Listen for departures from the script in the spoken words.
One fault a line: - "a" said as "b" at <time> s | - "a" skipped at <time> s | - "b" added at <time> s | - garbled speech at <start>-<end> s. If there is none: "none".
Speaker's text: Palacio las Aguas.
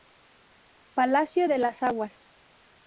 - "de" added at 1.5 s